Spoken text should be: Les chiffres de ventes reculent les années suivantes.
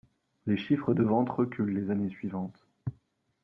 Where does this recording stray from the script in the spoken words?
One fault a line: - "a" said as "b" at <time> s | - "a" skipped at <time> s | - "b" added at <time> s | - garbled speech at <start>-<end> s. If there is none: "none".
none